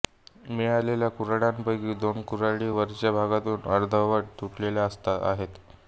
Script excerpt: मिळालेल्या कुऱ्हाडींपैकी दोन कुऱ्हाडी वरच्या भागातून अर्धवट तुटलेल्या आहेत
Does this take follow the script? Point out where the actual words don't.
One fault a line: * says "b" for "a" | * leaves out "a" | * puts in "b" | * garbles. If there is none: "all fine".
all fine